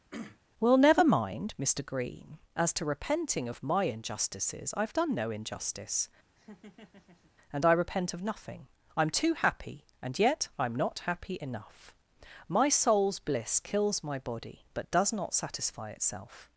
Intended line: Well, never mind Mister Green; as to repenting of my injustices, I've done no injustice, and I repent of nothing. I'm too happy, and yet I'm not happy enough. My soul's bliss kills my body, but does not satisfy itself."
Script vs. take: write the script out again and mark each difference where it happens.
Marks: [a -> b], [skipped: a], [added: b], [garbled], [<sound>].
[throat clearing] Well, never mind Mister Green; as to repenting of my injustices, I've done no injustice, [laugh] and I repent of nothing. I'm too happy, and yet I'm not happy enough. My soul's bliss kills my body, but does not satisfy itself."